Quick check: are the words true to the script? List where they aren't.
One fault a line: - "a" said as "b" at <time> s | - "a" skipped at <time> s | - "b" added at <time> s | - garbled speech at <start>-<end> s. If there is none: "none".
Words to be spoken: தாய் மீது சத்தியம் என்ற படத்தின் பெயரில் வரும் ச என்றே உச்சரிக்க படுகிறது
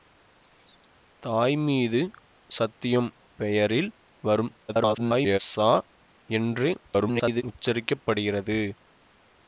- "என்ற படத்தின்" skipped at 3.1 s
- garbled speech at 4.7-5.4 s
- garbled speech at 6.9-7.4 s